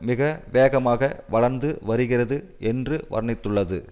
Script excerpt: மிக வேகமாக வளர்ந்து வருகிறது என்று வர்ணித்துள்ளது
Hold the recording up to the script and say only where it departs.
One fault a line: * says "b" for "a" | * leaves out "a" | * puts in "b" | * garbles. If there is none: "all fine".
all fine